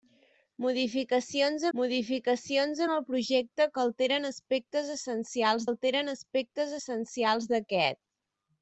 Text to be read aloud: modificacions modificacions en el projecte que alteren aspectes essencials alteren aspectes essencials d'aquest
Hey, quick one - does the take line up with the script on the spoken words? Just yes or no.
yes